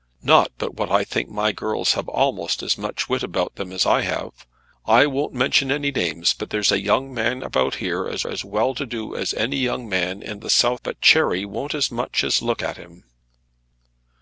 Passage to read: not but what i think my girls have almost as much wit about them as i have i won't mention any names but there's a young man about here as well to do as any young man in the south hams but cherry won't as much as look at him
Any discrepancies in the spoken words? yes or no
yes